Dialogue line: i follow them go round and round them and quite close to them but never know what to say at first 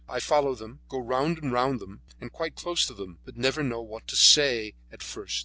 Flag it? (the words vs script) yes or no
no